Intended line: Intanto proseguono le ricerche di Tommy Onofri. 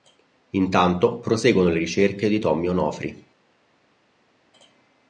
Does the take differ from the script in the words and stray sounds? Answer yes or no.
no